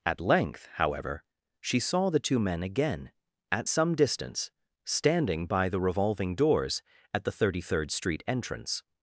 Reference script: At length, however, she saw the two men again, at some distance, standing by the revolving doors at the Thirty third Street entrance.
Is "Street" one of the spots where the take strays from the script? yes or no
no